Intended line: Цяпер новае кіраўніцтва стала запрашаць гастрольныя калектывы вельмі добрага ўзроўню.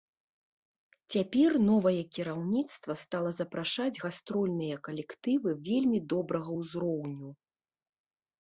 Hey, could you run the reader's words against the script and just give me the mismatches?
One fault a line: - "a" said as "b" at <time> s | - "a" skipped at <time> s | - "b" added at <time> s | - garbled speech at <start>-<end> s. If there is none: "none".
none